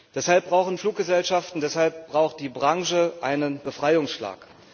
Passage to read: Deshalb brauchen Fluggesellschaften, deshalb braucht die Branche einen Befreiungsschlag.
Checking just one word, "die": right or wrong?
right